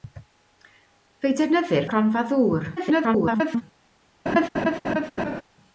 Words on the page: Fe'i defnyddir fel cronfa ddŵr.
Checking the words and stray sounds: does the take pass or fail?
fail